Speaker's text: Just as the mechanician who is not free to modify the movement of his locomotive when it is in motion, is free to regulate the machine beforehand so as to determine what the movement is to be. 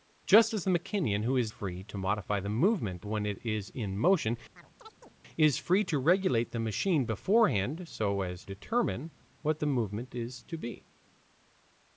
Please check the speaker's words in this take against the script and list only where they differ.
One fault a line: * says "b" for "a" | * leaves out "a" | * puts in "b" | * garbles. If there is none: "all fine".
* leaves out "not"
* leaves out "of his locomotive"
* leaves out "to"